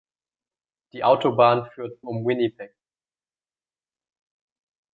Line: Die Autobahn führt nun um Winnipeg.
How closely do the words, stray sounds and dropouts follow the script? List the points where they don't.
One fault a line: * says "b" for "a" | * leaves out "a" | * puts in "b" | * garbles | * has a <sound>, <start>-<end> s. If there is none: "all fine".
* leaves out "nun"